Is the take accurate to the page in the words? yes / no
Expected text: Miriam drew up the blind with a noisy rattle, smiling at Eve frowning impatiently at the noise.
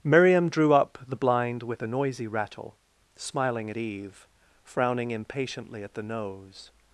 no